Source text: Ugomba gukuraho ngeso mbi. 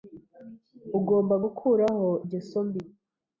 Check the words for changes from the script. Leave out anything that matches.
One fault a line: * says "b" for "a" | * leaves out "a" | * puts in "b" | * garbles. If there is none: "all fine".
all fine